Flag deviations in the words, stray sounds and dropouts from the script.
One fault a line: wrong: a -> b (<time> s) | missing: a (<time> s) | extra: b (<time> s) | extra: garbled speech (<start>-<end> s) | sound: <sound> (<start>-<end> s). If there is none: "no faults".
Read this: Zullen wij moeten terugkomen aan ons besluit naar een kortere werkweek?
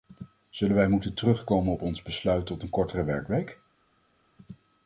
wrong: aan -> op (1.7 s)
wrong: naar -> tot (2.4 s)